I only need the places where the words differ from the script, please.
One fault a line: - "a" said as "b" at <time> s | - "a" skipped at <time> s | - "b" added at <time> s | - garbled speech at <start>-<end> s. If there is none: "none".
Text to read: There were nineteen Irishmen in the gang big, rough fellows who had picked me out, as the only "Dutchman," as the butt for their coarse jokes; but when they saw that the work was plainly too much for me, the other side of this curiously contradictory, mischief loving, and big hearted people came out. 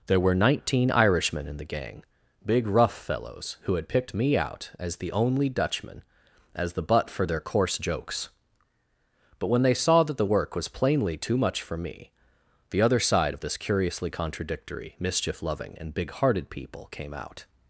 none